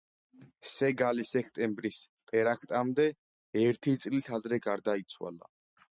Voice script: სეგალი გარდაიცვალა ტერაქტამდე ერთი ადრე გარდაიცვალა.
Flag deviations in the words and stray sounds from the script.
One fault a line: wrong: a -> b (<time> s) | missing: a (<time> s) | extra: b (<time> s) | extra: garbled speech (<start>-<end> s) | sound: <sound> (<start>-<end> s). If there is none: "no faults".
wrong: გარდაიცვალა -> სექტემბრის (1.3 s)
extra: წლით (4.0 s)